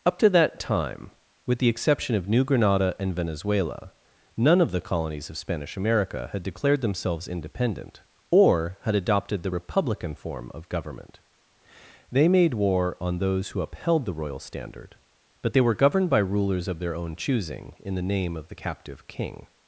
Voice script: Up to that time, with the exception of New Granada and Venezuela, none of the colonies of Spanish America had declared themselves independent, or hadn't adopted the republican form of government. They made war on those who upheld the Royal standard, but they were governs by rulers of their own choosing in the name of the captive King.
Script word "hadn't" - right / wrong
wrong